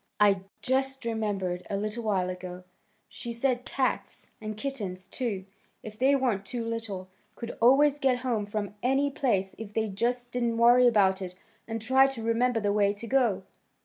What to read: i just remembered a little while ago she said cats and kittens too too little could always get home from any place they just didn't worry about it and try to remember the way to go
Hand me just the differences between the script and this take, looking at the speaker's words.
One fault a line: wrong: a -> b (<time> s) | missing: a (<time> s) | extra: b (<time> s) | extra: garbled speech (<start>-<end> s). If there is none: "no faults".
extra: if they weren't (5.8 s)
extra: if (9.6 s)